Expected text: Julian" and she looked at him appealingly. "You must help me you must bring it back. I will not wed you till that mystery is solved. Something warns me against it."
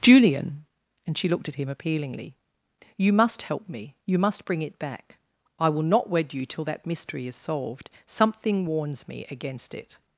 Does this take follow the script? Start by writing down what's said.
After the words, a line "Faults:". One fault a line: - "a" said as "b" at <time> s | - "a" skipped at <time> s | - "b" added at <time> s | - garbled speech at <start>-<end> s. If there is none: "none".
Julian" and she looked at him appealingly. "You must help me you must bring it back. I will not wed you till that mystery is solved. Something warns me against it."
Faults:
none